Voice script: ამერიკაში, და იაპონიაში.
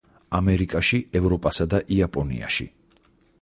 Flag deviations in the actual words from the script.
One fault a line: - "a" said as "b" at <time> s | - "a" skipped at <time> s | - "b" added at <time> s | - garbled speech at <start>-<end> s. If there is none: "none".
- "ევროპასა" added at 1.2 s